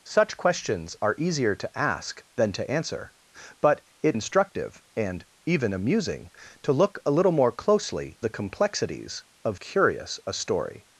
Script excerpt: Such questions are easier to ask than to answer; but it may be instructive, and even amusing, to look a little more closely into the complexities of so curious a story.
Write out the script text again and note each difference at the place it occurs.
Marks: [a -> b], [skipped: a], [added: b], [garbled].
Such questions are easier to ask than to answer; but it [skipped: may be] instructive, and even amusing, to look a little more closely [skipped: into] the complexities of [skipped: so] curious a story.